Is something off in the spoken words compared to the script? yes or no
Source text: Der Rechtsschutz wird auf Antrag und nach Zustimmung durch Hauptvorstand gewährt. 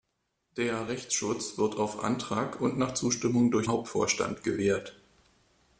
no